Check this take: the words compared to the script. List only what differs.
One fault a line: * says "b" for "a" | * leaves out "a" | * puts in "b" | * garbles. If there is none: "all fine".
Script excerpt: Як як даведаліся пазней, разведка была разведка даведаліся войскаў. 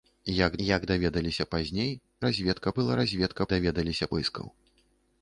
all fine